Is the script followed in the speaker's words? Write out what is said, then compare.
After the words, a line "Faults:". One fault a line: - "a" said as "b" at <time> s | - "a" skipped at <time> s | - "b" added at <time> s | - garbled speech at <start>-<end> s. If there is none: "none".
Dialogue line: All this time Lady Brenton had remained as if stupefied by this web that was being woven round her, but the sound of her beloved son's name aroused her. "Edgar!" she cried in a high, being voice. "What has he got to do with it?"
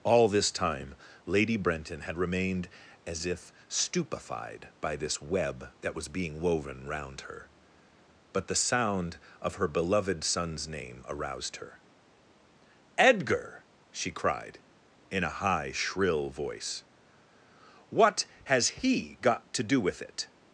All this time Lady Brenton had remained as if stupefied by this web that was being woven round her, but the sound of her beloved son's name aroused her. "Edgar!" she cried in a high, shrill voice. "What has he got to do with it?"
Faults:
- "being" said as "shrill" at 15.7 s